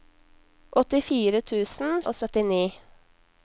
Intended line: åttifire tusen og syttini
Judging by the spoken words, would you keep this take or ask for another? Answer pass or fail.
pass